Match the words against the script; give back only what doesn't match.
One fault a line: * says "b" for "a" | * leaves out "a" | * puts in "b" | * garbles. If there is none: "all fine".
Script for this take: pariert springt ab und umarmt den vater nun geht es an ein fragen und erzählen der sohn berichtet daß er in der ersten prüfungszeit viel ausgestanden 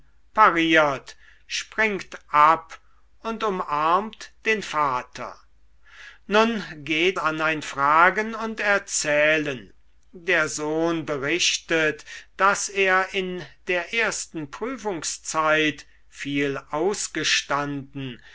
* leaves out "es"